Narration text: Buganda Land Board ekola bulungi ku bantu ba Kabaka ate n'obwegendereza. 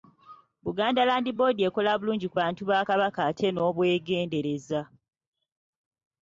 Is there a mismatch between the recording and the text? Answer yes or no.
no